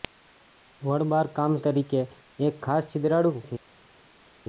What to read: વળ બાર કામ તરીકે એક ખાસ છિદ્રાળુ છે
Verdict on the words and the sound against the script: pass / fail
pass